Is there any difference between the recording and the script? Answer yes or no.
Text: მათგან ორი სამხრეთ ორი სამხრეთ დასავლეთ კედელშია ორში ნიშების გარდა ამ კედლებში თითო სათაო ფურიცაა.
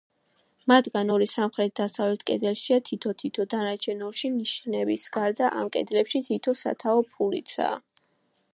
yes